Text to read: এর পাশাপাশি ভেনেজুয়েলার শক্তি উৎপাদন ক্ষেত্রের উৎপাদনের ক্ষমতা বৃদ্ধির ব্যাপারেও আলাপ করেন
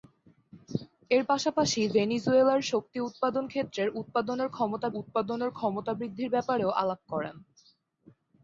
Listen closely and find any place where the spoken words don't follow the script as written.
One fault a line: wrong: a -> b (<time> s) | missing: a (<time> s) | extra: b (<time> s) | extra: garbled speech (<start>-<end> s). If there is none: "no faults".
extra: উৎপাদনের ক্ষমতা (5.0 s)